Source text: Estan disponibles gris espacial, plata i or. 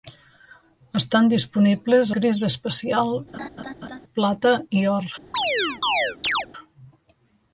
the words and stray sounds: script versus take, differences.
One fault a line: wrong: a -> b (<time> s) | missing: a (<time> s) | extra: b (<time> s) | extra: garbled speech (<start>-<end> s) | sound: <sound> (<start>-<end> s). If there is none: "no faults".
sound: laugh (3.3-4.0 s)
sound: chirp (5.3-6.5 s)